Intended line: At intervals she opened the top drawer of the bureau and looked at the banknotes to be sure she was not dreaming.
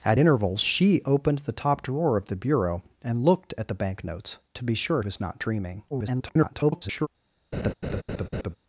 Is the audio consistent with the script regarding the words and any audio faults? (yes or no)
no